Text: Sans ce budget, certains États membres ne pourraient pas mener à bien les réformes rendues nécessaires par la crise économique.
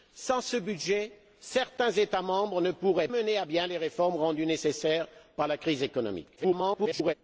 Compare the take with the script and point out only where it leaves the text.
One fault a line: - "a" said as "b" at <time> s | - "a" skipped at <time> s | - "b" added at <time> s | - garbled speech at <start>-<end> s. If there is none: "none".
- "pas" skipped at 3.1 s
- garbled speech at 6.4-7.1 s